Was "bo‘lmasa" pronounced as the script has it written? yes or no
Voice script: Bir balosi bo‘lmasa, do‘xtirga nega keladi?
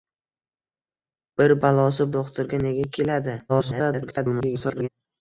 no